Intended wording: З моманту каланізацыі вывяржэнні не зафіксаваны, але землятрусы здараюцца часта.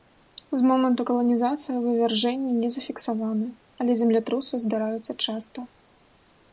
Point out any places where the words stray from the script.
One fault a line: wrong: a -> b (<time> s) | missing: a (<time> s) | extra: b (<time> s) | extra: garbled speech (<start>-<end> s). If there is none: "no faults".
no faults